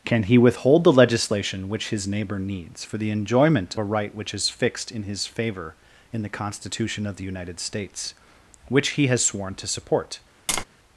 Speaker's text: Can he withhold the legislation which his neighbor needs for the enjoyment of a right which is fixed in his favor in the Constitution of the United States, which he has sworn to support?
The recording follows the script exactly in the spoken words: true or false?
false